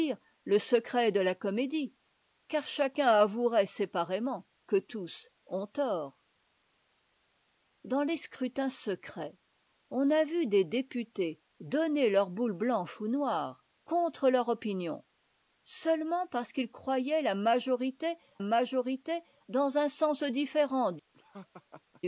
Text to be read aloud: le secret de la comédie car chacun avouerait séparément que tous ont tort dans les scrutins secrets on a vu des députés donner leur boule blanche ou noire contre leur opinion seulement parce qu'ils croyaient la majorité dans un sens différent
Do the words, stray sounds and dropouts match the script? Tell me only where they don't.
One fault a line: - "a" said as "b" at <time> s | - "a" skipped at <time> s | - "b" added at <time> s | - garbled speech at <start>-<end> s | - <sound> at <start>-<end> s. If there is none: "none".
- "majorité" added at 18.4 s
- laugh at 21.1-22.0 s